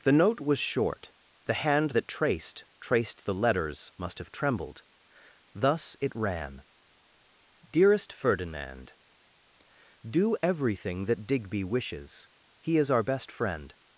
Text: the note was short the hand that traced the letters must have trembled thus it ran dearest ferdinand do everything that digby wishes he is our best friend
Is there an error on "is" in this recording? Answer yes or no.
no